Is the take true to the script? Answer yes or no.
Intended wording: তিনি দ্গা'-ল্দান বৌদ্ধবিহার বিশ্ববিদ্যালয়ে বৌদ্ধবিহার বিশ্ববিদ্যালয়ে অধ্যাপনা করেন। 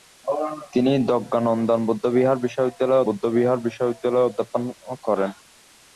yes